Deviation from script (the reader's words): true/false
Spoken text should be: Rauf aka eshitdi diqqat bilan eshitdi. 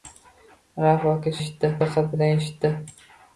false